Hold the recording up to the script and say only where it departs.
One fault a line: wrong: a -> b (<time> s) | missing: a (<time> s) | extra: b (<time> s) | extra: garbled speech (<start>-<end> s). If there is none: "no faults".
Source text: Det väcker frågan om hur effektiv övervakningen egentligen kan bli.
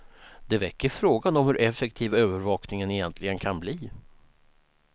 no faults